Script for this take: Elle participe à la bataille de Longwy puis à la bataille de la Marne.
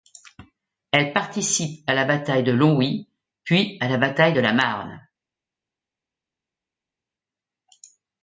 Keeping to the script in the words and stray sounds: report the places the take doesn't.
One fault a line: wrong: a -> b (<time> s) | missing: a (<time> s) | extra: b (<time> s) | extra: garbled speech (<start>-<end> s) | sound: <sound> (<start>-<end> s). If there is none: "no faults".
no faults